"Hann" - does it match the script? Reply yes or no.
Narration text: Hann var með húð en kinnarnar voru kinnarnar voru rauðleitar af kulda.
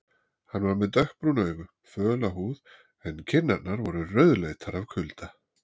yes